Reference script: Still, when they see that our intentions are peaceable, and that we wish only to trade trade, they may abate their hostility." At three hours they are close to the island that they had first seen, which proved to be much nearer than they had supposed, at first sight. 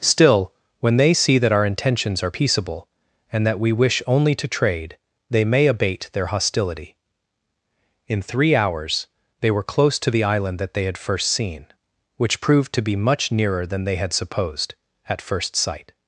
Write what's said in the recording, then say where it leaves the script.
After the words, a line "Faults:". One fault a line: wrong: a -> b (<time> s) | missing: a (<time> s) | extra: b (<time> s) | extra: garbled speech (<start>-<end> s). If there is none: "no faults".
Still, when they see that our intentions are peaceable, and that we wish only to trade, they may abate their hostility." In three hours they were close to the island that they had first seen, which proved to be much nearer than they had supposed, at first sight.
Faults:
missing: trade (5.0 s)
wrong: At -> In (8.1 s)
wrong: are -> were (9.5 s)